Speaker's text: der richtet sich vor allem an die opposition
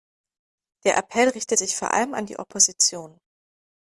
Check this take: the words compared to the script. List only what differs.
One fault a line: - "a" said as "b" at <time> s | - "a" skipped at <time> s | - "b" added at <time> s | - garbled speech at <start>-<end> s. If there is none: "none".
- "appell" added at 1.0 s